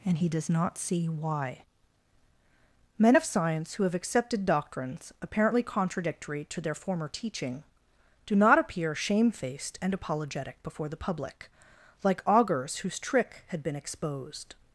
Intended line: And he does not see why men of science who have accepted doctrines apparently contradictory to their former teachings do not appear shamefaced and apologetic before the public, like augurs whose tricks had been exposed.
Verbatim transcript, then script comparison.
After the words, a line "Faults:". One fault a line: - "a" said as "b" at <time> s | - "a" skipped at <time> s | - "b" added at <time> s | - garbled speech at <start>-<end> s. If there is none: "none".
And he does not see why men of science who have accepted doctrines apparently contradictory to their former teaching do not appear shamefaced and apologetic before the public, like augurs whose trick had been exposed.
Faults:
- "teachings" said as "teaching" at 7.1 s
- "tricks" said as "trick" at 13.0 s